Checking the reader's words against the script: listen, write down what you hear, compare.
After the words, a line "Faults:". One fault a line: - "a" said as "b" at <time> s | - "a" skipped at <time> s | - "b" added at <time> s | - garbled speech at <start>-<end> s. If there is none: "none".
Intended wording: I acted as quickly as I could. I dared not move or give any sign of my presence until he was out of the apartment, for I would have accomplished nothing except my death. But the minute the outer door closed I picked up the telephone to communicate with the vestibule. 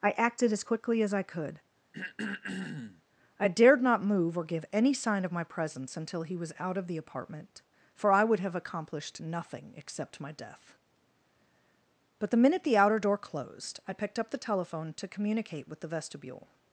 I acted as quickly as I could. I dared not move or give any sign of my presence until he was out of the apartment, for I would have accomplished nothing except my death. But the minute the outer door closed I picked up the telephone to communicate with the vestibule.
Faults:
none